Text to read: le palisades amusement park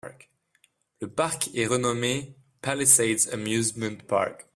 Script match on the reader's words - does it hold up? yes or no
no